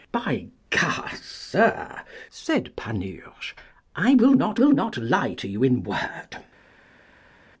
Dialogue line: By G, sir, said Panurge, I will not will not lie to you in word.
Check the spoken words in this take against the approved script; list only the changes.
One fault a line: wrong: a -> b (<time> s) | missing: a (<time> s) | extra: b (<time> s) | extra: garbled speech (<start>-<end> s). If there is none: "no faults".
no faults